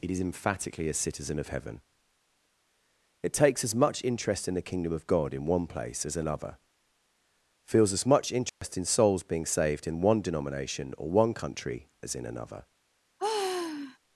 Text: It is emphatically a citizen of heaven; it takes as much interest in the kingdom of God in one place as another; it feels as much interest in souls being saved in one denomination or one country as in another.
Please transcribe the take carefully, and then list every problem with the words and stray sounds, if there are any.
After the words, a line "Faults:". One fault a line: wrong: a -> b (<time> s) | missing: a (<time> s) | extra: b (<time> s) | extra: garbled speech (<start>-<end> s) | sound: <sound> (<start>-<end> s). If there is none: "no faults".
It is emphatically a citizen of heaven; it takes as much interest in the kingdom of God in one place as another; feels as much interest in souls being saved in one denomination or one country as in another.
Faults:
missing: it (6.6 s)
sound: dropout (8.5-8.6 s)
sound: sigh (13.2-14.0 s)